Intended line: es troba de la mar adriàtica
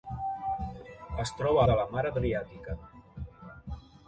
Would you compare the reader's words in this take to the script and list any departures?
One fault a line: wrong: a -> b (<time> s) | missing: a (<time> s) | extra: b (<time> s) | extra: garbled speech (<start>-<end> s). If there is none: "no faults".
no faults